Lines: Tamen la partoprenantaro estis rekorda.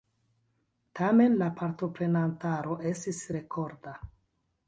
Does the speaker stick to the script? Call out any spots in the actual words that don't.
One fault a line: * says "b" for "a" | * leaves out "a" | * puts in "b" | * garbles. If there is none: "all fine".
all fine